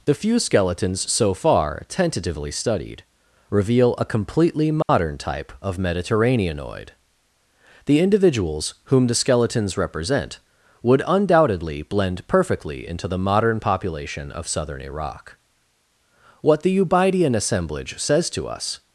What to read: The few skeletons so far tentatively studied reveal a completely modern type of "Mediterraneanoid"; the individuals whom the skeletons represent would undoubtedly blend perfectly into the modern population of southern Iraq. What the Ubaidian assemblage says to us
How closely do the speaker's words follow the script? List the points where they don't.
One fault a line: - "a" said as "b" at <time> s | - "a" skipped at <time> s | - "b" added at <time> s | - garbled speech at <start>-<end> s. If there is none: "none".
none